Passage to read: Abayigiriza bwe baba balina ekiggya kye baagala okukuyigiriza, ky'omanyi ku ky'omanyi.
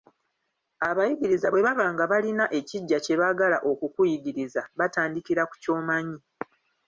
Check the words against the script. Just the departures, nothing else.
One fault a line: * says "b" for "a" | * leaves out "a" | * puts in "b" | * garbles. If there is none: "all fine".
* puts in "nga"
* says "batandikira" for "ky'omanyi"